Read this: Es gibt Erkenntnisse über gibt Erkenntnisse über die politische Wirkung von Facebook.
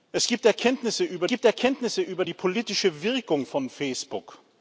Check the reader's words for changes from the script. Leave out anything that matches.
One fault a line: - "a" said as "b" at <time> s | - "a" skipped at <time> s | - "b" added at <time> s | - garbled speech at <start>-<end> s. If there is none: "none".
none